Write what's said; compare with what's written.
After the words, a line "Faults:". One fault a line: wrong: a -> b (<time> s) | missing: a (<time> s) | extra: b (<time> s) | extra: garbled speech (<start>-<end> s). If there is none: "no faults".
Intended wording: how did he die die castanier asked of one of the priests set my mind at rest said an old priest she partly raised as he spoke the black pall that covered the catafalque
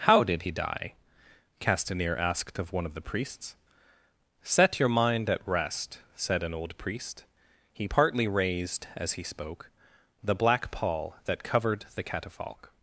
how did he die castanier asked of one of the priests set your mind at rest said an old priest he partly raised as he spoke the black pall that covered the catafalque
Faults:
missing: die (0.9 s)
wrong: my -> your (4.8 s)
wrong: she -> he (7.7 s)